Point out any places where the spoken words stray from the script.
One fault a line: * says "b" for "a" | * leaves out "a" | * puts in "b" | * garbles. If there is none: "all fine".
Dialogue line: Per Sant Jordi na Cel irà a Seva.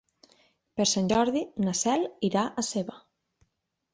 all fine